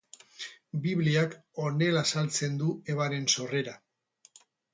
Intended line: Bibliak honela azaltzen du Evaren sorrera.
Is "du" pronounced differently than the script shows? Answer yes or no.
no